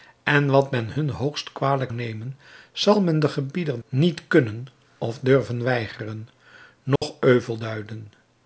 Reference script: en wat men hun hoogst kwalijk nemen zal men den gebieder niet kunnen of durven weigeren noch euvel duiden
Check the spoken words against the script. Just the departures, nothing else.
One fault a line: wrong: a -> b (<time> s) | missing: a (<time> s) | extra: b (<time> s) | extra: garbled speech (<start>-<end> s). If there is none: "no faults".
no faults